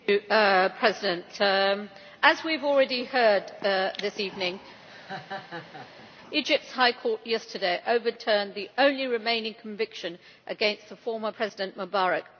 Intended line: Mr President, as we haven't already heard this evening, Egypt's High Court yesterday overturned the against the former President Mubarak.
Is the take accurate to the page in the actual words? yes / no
no